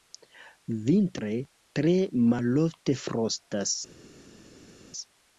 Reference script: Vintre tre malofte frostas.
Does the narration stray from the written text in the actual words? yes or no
no